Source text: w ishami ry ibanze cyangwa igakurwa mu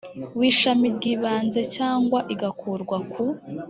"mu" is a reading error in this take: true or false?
true